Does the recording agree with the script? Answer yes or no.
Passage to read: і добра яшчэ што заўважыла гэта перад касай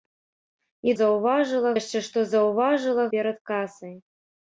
no